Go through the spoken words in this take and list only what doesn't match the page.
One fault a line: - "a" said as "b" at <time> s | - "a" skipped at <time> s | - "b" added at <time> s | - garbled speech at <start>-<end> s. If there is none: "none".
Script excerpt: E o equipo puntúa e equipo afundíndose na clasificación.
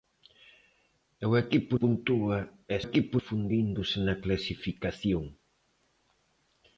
none